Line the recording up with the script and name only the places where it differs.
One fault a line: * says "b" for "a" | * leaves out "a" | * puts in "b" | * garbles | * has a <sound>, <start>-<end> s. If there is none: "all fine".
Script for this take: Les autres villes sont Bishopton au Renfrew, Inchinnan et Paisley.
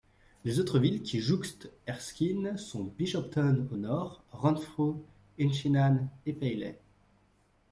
* puts in "qui jouxtent Erskine"
* puts in "nord"